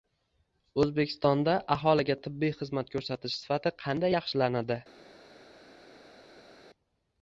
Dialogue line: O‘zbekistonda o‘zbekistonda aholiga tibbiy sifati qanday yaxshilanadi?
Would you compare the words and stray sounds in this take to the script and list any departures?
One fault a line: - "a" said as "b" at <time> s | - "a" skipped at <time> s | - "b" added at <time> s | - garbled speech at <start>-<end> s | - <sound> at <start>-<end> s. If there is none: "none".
- "o‘zbekistonda" skipped at 1.5 s
- "xizmat ko‘rsatish" added at 2.6 s